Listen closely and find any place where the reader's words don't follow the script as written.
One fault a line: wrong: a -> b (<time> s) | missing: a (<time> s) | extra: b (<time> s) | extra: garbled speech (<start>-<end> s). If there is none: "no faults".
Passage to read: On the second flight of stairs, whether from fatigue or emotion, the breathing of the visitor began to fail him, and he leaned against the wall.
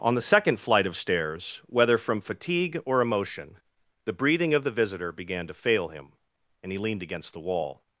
no faults